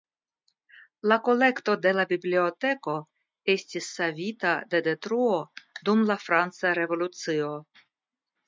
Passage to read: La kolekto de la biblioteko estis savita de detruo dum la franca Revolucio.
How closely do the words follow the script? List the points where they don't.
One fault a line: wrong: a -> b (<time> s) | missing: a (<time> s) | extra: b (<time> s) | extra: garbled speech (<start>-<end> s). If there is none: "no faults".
no faults